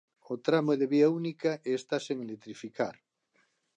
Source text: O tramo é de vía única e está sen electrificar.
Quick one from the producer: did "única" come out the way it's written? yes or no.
yes